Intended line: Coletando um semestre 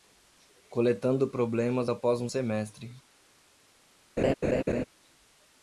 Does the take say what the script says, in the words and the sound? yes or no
no